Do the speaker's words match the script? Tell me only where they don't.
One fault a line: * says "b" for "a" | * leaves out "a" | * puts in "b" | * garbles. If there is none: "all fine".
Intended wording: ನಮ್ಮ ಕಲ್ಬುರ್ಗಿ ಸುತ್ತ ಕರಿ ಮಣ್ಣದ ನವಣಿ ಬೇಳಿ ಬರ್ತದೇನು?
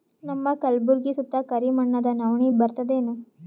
* leaves out "ಬೇಳಿ"